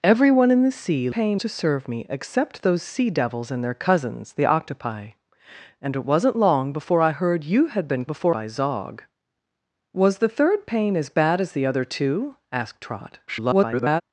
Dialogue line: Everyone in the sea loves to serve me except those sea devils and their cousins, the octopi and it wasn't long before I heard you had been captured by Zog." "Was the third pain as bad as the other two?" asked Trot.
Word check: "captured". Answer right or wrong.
wrong